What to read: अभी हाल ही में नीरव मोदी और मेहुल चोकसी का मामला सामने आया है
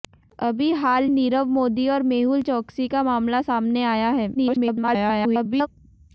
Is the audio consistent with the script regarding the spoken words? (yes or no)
no